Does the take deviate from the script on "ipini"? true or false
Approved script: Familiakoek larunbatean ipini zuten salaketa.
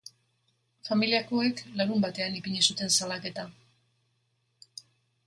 false